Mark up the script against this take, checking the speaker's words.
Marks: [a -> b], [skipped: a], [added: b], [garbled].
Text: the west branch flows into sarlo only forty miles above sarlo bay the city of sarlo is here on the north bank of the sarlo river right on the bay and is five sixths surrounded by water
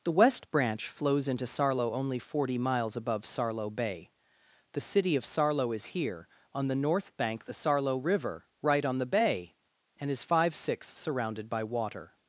the west branch flows into sarlo only forty miles above sarlo bay the city of sarlo is here on the north bank [skipped: of] the sarlo river right on the bay and is five sixths surrounded by water